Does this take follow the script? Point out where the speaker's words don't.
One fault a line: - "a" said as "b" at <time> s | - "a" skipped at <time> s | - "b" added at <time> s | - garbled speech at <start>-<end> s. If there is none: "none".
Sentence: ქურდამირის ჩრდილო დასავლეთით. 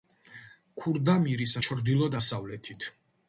none